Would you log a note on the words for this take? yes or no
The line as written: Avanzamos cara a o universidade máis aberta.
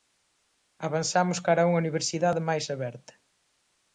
yes